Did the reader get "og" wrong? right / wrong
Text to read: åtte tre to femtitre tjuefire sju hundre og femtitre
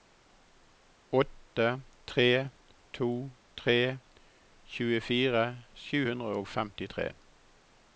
right